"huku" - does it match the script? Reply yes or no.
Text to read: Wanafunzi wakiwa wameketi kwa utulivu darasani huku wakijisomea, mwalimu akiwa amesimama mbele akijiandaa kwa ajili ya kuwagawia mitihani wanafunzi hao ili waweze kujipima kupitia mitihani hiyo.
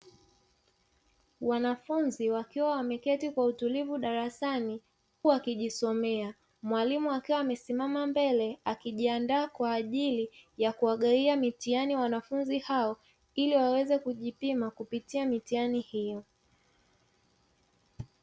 no